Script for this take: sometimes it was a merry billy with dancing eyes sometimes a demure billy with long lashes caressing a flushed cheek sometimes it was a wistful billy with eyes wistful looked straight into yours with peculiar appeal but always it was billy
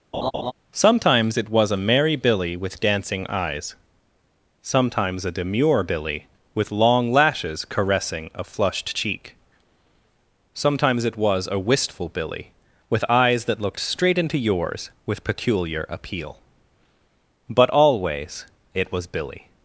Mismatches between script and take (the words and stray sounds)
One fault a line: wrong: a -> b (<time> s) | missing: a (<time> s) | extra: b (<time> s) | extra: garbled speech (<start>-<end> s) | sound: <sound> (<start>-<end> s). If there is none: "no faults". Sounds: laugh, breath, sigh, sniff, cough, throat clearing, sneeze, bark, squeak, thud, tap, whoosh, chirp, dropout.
sound: laugh (0.1-0.5 s)
wrong: wistful -> that (13.4 s)